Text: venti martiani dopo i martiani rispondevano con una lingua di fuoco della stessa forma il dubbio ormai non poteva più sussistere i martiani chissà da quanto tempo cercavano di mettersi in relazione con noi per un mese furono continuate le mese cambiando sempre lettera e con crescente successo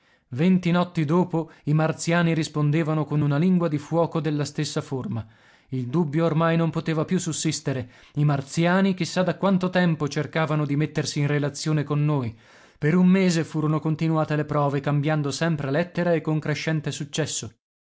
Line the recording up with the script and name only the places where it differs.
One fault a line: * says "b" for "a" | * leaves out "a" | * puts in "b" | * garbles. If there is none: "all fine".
* says "notti" for "martiani"
* says "prove" for "mese"